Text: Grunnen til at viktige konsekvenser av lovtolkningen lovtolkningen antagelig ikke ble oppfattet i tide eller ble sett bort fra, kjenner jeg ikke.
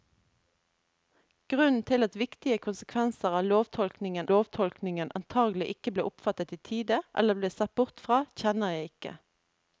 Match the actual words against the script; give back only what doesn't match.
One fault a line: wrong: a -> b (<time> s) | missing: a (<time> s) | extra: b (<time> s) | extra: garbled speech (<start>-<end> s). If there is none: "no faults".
no faults